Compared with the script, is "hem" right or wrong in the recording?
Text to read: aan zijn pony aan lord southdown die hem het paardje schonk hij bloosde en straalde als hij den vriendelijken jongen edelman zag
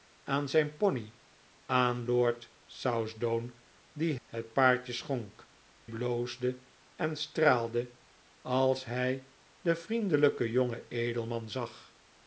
wrong